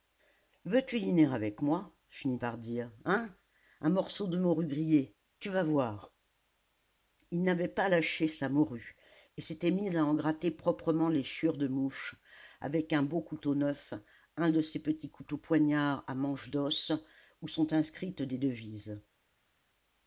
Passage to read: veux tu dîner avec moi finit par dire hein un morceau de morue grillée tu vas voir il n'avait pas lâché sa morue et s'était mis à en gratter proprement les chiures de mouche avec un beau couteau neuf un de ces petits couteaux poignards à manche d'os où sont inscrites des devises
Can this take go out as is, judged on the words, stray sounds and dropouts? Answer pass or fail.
pass